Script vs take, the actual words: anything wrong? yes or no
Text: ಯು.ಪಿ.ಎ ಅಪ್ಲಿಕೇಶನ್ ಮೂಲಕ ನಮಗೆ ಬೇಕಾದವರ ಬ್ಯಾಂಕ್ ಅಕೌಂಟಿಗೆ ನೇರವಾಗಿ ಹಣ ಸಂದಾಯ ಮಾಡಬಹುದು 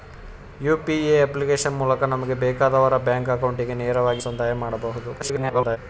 yes